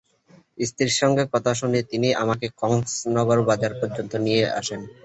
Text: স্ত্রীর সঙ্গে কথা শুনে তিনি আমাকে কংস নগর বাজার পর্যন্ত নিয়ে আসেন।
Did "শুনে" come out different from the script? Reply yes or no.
no